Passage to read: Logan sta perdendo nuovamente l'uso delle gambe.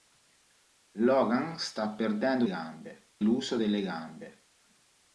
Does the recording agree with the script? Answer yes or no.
no